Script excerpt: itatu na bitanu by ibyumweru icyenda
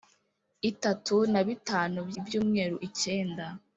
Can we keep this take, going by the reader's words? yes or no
yes